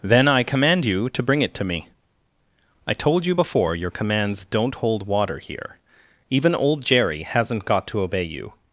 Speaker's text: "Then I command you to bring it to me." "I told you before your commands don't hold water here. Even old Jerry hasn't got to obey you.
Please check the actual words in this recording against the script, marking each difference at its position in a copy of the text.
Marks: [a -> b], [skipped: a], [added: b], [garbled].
"Then I command you to bring it to me." "I told you before your commands don't hold water here. Even old Jerry hasn't got to obey you.